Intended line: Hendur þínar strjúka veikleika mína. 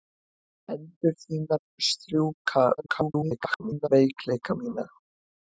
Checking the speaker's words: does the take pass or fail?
fail